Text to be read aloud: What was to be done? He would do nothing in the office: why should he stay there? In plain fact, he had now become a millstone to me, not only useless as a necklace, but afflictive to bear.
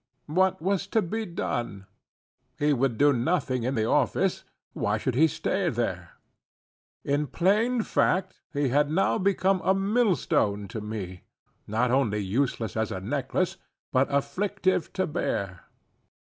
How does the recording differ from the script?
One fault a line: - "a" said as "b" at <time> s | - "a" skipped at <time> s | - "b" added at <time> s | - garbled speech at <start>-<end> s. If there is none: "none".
none